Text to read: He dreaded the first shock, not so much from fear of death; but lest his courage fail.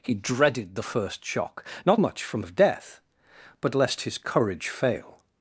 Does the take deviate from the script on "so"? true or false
true